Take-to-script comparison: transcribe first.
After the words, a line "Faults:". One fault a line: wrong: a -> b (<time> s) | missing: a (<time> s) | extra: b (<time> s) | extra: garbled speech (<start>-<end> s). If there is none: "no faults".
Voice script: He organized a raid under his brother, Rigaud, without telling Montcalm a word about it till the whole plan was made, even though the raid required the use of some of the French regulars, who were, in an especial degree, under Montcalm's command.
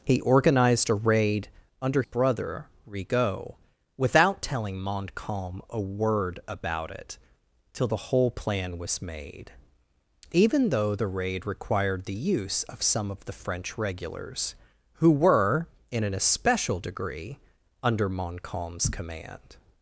He organized a raid under brother, Rigaud, without telling Montcalm a word about it till the whole plan was made, even though the raid required the use of some of the French regulars, who were, in an especial degree, under Montcalm's command.
Faults:
missing: his (2.0 s)